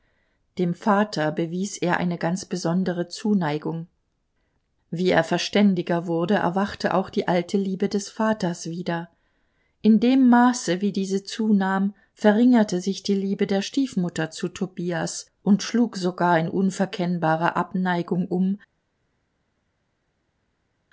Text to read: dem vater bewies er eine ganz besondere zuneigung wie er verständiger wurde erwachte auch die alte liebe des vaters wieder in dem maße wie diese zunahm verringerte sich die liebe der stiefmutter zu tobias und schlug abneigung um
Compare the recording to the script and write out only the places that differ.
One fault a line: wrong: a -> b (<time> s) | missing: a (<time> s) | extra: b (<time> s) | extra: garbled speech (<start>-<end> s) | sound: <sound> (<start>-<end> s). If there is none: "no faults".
extra: sogar in unverkennbare (16.0 s)